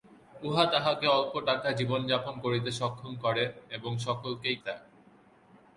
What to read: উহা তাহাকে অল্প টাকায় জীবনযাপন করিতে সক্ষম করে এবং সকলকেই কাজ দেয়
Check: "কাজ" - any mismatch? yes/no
yes